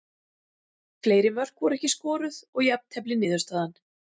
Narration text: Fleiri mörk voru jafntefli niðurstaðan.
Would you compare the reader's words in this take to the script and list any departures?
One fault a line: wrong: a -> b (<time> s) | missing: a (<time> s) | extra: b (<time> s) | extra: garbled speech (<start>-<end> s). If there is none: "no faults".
extra: ekki skoruð og (1.8 s)